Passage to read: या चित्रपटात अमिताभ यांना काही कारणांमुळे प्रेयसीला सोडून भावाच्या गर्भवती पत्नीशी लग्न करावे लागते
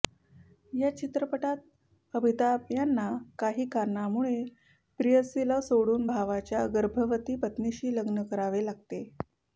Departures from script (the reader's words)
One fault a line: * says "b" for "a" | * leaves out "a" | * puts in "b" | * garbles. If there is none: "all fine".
all fine